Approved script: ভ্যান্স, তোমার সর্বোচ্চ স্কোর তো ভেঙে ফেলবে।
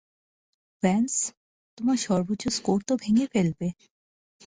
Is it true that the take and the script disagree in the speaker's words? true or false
false